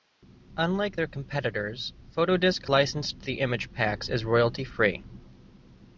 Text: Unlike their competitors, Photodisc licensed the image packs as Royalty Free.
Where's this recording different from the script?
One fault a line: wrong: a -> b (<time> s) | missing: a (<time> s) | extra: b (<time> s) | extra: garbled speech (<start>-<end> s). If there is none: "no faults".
no faults